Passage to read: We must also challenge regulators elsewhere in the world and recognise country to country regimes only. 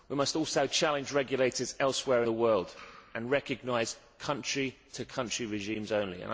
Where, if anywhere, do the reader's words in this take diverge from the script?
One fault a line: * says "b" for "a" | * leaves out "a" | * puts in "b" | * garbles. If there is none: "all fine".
* leaves out "in"